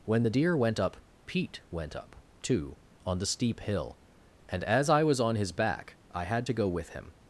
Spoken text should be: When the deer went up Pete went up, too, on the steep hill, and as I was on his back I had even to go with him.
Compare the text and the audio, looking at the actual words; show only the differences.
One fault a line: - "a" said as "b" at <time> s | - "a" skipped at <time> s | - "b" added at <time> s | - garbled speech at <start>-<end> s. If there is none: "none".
- "even" skipped at 6.5 s